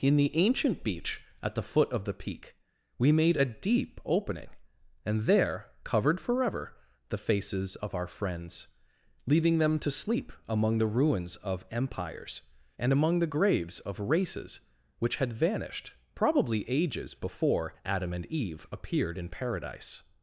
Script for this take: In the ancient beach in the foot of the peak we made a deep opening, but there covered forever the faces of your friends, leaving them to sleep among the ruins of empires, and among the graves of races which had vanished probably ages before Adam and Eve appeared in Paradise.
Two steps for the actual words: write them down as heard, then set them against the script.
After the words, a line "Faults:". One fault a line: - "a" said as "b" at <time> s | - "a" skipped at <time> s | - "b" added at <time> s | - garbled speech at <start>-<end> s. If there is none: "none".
In the ancient beach at the foot of the peak we made a deep opening, and there covered forever the faces of our friends, leaving them to sleep among the ruins of empires, and among the graves of races which had vanished probably ages before Adam and Eve appeared in Paradise.
Faults:
- "in" said as "at" at 1.4 s
- "but" said as "and" at 5.0 s
- "your" said as "our" at 7.9 s